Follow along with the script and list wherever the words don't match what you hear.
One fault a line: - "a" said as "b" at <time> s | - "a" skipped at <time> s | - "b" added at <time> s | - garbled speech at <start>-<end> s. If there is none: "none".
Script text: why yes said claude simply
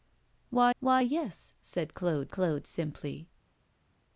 - "why" added at 0.8 s
- "claude" added at 2.3 s